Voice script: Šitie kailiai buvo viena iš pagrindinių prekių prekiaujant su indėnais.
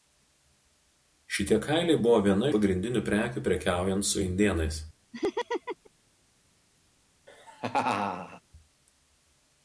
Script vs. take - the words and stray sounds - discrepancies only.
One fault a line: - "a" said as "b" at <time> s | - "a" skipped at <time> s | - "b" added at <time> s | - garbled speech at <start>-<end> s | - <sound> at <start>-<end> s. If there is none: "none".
- "iš" skipped at 2.5 s
- laugh at 5.1-5.9 s
- laugh at 7.3-8.4 s